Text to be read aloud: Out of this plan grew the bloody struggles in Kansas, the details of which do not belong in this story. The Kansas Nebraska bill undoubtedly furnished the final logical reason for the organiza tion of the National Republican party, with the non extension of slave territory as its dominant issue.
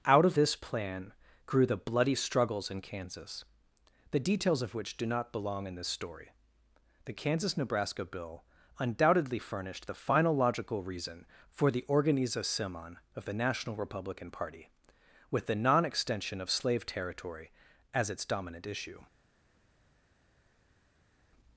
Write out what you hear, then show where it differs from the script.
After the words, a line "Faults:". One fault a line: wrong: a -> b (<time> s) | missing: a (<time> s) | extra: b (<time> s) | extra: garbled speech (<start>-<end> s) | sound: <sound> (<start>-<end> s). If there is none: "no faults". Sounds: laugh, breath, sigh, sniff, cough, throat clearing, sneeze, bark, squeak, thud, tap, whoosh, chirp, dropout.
Out of this plan grew the bloody struggles in Kansas, the details of which do not belong in this story. The Kansas Nebraska bill undoubtedly furnished the final logical reason for the organiza simon of the National Republican party, with the non extension of slave territory as its dominant issue.
Faults:
wrong: tion -> simon (12.4 s)